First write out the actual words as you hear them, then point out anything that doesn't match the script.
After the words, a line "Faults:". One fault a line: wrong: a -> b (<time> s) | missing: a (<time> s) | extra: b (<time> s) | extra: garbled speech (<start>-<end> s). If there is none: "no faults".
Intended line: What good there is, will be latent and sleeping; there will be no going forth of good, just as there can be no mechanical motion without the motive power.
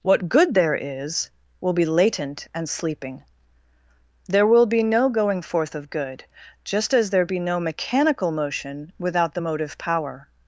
What good there is, will be latent and sleeping; there will be no going forth of good, just as there be no mechanical motion without the motive power.
Faults:
missing: can (7.2 s)